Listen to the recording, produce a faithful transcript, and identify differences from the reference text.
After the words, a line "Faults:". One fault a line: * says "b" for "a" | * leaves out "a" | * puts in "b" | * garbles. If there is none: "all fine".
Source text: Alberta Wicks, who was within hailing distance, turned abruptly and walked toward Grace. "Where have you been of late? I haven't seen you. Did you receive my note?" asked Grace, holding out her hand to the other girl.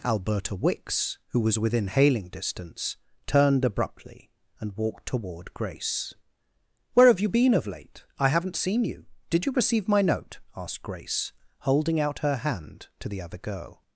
Alberta Wicks, who was within hailing distance, turned abruptly and walked toward Grace. "Where have you been of late? I haven't seen you. Did you receive my note?" asked Grace, holding out her hand to the other girl.
Faults:
all fine